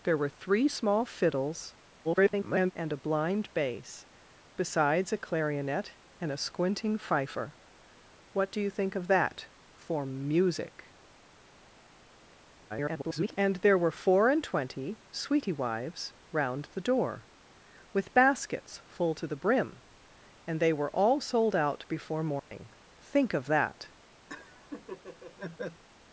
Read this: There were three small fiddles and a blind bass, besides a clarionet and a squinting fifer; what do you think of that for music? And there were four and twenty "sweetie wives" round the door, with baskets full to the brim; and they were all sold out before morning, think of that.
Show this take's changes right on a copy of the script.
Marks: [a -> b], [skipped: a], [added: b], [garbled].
There were three small fiddles [garbled] and a blind bass, besides a clarionet and a squinting fifer; what do you think of that for music? [garbled] And there were four and twenty "sweetie wives" round the door, with baskets full to the brim; and they were all sold out before morning, think of that.